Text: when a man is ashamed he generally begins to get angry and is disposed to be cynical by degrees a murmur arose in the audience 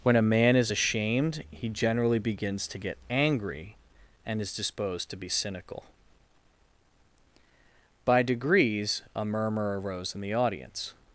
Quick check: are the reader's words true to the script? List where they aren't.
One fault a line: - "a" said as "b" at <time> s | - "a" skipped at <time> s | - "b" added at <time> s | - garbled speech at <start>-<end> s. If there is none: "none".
none